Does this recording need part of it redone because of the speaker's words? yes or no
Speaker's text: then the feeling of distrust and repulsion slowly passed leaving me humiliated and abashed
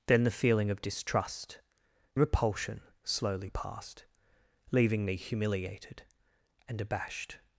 yes